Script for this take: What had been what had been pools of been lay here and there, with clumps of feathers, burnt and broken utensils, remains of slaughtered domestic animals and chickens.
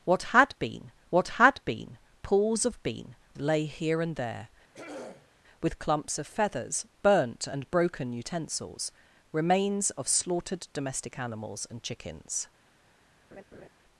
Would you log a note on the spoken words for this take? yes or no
no